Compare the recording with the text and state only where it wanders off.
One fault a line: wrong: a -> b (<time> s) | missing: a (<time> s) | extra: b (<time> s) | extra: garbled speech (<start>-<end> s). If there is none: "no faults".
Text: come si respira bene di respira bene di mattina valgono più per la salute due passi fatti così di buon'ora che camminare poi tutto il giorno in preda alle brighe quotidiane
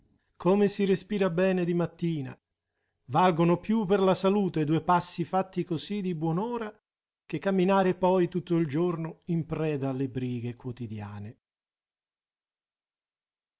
missing: respira bene di (1.8 s)